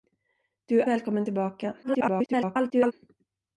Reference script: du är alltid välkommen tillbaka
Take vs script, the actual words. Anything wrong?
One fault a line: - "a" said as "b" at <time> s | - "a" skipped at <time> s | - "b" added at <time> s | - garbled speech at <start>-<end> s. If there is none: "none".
- "alltid" skipped at 0.8 s
- garbled speech at 1.8-2.9 s